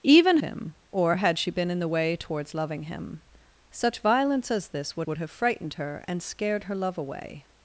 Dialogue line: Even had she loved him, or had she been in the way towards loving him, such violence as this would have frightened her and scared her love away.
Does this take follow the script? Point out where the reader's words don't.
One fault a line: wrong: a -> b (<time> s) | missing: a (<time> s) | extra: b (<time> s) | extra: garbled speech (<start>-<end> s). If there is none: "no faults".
missing: had she loved (0.4 s)
extra: would (5.1 s)